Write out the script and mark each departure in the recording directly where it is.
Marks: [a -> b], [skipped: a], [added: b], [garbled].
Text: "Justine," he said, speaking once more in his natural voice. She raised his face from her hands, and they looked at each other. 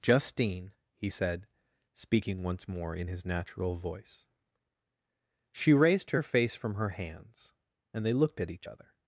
"Justine," he said, speaking once more in his natural voice. She raised [his -> her] face from her hands, and they looked at each other.